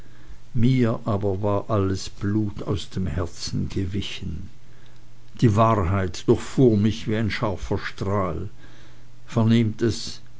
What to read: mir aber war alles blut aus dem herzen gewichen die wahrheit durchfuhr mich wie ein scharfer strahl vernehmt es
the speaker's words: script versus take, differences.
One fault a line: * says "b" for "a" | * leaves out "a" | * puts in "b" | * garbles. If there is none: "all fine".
all fine